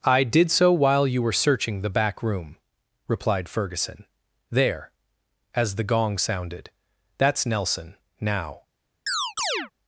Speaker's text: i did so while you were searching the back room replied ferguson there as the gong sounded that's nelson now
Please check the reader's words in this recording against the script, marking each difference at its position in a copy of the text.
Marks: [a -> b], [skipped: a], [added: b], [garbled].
i did so while you were searching the back room replied ferguson there as the gong sounded that's nelson now